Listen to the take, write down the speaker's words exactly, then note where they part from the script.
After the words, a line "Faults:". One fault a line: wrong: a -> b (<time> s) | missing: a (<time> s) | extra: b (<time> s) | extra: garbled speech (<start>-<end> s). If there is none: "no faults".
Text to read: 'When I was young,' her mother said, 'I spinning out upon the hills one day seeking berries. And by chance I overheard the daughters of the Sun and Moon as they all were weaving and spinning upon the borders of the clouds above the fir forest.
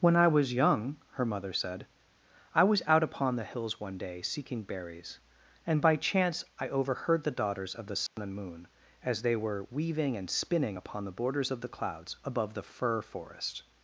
'When I was young,' her mother said, 'I was out upon the hills one day seeking berries. And by chance I overheard the daughters of the Sun and Moon as they were weaving and spinning upon the borders of the clouds above the fir forest.
Faults:
wrong: spinning -> was (2.6 s)
missing: all (9.3 s)